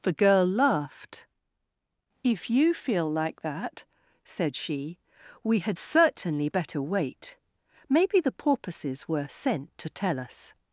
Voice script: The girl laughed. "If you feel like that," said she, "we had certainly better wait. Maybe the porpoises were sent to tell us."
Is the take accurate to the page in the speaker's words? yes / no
yes